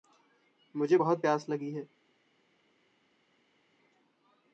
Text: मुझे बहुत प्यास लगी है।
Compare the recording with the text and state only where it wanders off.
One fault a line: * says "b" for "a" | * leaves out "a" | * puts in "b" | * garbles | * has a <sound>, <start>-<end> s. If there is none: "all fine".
all fine